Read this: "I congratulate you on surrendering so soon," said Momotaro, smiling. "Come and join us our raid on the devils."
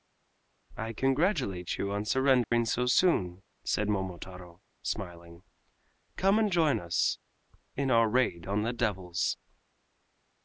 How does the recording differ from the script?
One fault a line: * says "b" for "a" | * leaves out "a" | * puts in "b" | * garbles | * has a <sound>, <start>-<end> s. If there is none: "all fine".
* has a dropout, 2.4-2.5 s
* puts in "in"